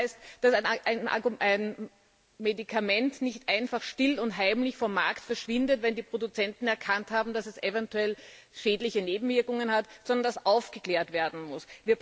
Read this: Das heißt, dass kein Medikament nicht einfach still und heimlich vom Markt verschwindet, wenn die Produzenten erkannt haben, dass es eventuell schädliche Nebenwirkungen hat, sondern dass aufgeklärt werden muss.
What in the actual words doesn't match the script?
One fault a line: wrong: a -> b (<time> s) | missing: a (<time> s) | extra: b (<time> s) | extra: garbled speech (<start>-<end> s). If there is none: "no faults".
wrong: kein -> ein (1.4 s)